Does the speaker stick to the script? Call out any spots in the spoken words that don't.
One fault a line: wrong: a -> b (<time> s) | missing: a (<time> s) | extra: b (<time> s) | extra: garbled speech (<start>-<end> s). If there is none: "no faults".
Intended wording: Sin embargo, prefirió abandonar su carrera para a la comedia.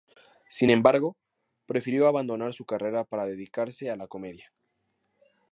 extra: dedicarse (3.2 s)